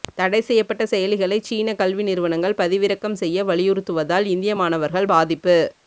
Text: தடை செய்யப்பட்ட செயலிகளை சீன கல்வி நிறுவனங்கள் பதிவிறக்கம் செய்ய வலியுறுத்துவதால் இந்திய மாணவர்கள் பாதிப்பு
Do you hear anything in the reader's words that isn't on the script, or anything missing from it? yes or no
no